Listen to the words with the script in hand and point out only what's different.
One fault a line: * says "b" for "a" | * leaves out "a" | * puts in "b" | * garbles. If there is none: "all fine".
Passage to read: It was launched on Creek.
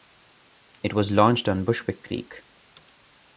* puts in "Bushwick"